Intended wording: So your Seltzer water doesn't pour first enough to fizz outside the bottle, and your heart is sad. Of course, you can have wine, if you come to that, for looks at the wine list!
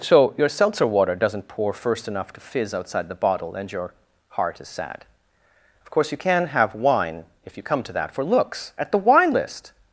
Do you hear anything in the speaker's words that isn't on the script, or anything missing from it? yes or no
no